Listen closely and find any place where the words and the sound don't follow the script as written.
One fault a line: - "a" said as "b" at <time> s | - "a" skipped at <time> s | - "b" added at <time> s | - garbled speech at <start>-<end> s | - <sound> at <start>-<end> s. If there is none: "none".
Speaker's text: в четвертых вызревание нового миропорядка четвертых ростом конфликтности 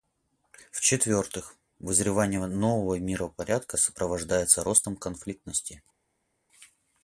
- "четвертых" said as "сопровождается" at 3.8 s